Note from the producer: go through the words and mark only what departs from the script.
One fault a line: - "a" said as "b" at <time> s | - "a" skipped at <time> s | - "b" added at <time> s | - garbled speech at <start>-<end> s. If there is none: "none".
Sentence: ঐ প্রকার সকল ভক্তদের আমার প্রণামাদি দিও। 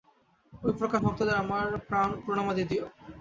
- "সকল" skipped at 1.0 s